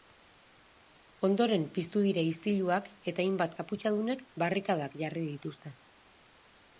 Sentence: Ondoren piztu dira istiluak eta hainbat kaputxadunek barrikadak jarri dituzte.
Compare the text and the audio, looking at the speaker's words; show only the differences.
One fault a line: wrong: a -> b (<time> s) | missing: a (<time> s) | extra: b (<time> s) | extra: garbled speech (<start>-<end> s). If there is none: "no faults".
no faults